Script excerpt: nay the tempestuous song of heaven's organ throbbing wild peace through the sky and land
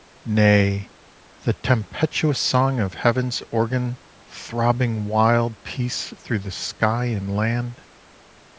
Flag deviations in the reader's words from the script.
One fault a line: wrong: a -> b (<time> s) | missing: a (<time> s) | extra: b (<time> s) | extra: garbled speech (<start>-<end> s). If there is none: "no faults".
no faults